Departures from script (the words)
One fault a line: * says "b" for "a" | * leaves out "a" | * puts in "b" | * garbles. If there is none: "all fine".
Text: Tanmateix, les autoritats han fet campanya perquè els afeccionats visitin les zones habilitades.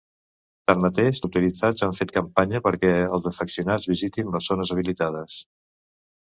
* leaves out "les"